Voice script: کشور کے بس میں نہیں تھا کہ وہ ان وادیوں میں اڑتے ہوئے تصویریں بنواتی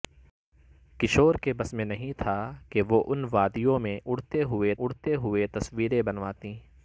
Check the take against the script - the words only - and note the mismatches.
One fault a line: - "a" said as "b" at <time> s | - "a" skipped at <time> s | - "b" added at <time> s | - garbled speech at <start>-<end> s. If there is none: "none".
- "اڑتے ہوئے" added at 4.8 s